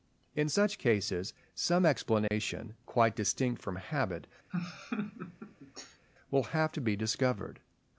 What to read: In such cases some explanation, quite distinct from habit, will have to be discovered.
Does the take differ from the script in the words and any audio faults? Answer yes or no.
yes